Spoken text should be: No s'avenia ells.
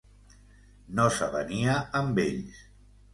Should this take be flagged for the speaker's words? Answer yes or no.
yes